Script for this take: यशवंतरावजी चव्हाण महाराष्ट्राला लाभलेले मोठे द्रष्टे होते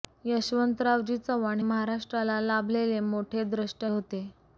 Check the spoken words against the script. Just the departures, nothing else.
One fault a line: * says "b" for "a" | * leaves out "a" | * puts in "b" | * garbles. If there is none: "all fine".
all fine